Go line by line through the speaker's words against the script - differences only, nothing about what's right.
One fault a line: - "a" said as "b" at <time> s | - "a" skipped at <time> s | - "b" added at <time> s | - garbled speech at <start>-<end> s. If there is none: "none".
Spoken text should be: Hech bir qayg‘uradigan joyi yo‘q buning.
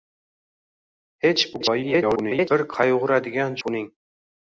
- garbled speech at 1.5-2.5 s
- "joyi yo‘q" skipped at 3.6 s